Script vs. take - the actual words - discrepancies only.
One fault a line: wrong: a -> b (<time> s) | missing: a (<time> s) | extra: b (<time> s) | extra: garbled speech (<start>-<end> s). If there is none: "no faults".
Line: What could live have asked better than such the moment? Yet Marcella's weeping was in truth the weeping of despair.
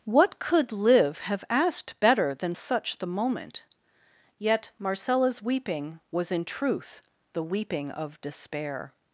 no faults